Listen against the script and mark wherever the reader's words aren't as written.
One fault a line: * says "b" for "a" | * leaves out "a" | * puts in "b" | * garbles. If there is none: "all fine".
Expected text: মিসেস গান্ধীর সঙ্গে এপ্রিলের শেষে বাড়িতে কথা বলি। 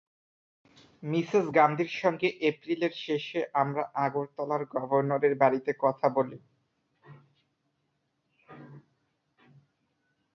* puts in "আমরা আগরতলার গভর্নরের"